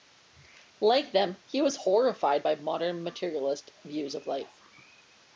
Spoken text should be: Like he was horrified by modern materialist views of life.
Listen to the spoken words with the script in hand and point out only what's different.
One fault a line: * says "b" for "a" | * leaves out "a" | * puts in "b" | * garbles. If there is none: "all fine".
* puts in "them"